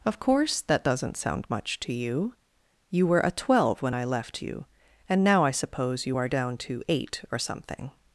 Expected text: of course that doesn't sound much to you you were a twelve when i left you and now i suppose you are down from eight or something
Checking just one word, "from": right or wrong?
wrong